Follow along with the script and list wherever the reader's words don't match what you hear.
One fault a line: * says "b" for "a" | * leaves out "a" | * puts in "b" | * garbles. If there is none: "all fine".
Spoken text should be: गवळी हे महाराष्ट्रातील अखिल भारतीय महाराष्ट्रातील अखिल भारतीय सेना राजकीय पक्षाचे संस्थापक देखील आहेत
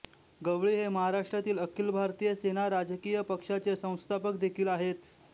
* leaves out "महाराष्ट्रातील अखिल भारतीय"